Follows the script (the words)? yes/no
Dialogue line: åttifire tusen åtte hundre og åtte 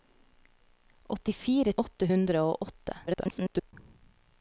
no